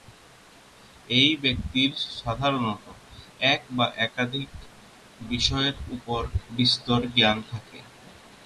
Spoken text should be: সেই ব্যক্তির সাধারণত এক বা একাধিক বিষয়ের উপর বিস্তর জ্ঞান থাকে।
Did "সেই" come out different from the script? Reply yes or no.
yes